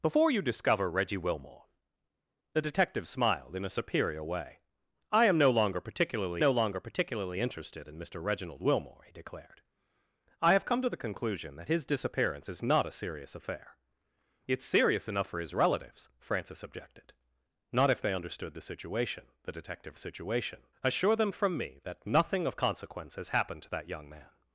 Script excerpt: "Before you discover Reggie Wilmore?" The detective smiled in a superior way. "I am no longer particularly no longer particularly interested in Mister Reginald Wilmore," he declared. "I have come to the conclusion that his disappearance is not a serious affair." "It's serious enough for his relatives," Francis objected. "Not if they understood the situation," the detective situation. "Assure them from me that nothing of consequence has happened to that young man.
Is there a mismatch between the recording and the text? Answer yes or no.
no